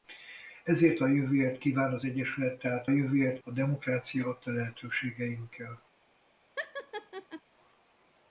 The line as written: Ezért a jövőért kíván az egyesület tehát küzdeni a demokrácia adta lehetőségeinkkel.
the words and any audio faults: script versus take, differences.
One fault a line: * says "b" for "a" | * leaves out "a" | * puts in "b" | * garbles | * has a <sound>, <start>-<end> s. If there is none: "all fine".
* says "jövőért" for "küzdeni"
* has a laugh, 6.6-7.4 s